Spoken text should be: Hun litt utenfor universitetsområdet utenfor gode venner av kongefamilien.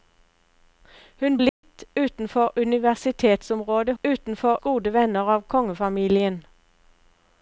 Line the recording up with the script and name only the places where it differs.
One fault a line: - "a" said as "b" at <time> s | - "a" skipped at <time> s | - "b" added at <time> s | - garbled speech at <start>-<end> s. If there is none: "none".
none